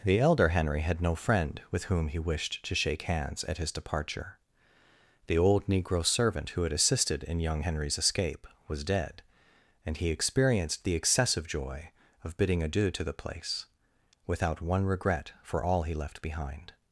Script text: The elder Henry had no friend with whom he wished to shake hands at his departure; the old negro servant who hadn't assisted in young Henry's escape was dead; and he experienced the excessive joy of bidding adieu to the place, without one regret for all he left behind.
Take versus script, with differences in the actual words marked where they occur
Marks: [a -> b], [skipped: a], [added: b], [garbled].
The elder Henry had no friend with whom he wished to shake hands at his departure; the old negro servant who [hadn't -> had] assisted in young Henry's escape was dead; and he experienced the excessive joy of bidding adieu to the place, without one regret for all he left behind.